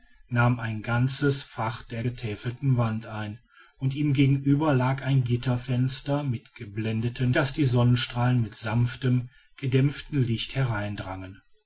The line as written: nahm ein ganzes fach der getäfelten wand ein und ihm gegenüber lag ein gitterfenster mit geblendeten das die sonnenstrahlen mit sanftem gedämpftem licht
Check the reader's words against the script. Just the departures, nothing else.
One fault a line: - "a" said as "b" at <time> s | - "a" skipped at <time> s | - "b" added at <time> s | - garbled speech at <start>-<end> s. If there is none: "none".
none